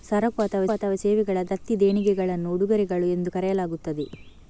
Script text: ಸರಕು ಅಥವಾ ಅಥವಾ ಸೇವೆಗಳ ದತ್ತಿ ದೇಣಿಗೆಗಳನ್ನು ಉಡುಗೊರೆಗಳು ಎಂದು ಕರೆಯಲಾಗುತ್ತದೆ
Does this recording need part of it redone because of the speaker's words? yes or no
no